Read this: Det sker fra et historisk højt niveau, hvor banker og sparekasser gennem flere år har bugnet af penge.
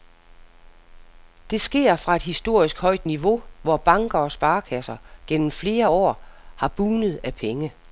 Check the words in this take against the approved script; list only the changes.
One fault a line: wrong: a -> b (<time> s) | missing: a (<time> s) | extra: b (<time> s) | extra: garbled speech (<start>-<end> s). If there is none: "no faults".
no faults